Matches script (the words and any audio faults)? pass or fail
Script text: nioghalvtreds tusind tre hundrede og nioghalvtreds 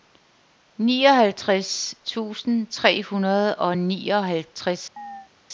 fail